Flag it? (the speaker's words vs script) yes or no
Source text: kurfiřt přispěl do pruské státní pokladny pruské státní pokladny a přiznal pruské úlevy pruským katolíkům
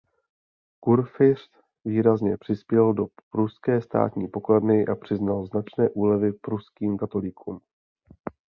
yes